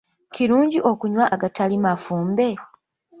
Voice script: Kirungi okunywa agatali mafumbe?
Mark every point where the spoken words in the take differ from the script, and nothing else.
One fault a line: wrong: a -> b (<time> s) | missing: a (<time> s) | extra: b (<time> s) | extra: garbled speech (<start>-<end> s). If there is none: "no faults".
no faults